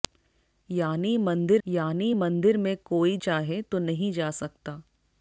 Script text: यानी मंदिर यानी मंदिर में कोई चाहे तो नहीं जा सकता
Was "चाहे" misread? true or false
false